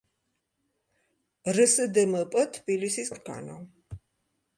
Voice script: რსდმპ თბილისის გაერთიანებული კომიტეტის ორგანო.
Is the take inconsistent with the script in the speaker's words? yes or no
yes